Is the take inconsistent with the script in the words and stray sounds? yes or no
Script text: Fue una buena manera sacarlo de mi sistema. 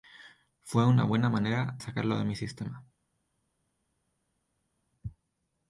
no